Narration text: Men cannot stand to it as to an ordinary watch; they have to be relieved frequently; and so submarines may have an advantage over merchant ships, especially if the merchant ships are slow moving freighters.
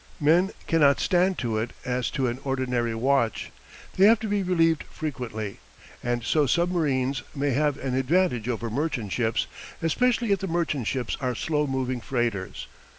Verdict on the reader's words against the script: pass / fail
pass